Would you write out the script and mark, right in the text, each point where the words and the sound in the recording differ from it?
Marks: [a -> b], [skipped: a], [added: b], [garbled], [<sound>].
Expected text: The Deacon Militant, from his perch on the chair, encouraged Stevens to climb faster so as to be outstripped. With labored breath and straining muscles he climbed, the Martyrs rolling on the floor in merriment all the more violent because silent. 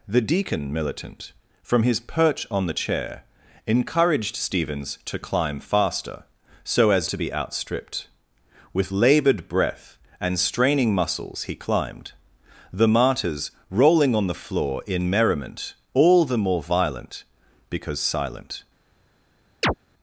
The Deacon Militant, from his perch on the chair, encouraged Stevens to climb faster so as to be outstripped. With labored breath and straining muscles he climbed, the Martyrs rolling on the floor in merriment all the more violent because silent. [chirp]